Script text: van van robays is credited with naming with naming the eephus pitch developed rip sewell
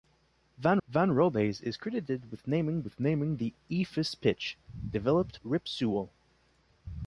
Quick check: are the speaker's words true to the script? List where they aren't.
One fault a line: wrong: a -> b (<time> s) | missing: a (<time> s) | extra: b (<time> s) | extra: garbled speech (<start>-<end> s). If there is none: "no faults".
no faults